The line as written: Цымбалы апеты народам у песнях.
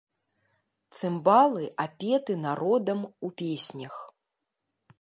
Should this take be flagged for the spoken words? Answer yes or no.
no